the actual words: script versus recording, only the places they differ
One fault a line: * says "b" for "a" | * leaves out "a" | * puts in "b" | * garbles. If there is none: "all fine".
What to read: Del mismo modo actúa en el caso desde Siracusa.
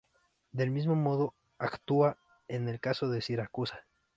* says "de" for "desde"